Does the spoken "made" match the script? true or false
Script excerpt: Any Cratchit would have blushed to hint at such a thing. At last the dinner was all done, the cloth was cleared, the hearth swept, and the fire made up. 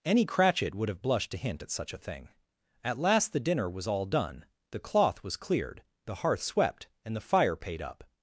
false